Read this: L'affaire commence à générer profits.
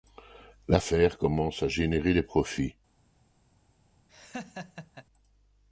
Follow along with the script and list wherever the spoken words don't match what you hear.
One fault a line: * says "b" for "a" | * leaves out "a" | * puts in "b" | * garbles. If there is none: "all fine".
* puts in "des"